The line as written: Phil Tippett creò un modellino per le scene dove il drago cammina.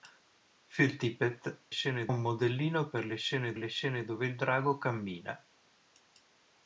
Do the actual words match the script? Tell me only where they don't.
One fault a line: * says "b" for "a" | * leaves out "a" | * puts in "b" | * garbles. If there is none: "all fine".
* says "scene" for "creò"
* puts in "le scene"